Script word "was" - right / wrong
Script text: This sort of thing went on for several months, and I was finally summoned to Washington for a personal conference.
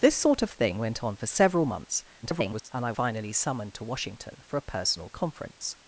wrong